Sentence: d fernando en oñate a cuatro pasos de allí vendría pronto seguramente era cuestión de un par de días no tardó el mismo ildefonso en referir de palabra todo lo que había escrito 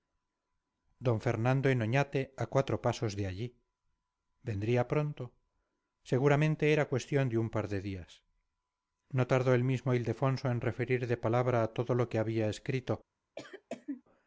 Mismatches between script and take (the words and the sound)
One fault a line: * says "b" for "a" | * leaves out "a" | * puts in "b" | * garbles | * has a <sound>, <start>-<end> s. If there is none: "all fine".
* has a cough, 13.4-14.0 s